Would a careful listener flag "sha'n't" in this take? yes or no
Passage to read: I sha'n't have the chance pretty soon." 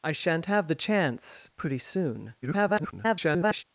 no